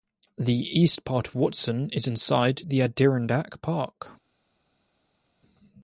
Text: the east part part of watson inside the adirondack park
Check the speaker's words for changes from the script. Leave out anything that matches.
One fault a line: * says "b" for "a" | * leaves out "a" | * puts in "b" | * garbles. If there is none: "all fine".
* leaves out "part"
* puts in "is"